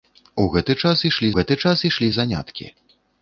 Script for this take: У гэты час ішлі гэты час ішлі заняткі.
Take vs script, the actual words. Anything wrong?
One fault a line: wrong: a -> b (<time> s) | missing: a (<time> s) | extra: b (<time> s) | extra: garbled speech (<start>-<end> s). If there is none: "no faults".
no faults